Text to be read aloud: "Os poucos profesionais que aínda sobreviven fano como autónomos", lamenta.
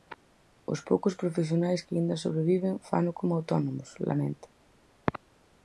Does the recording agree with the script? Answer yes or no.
yes